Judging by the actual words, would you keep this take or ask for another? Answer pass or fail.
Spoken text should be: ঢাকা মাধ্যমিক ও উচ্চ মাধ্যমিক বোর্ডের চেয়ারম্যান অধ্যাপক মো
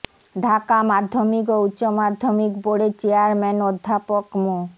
pass